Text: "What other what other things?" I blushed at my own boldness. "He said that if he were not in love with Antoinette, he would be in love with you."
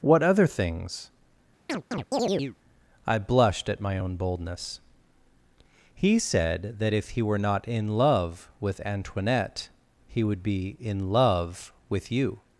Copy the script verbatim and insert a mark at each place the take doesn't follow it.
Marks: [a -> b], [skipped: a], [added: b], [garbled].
"What other [skipped: what other] things?" I blushed at my own boldness. "He said that if he were not in love with Antoinette, he would be in love with you."